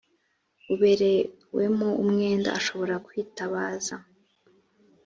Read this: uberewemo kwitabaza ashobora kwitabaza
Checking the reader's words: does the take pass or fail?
fail